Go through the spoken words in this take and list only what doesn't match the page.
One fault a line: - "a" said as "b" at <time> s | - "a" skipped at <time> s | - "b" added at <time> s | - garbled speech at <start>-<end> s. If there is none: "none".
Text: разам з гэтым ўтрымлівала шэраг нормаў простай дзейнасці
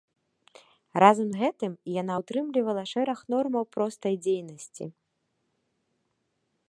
- "яна" added at 2.0 s